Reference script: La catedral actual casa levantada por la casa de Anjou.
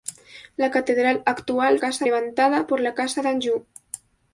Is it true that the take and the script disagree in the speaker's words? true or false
false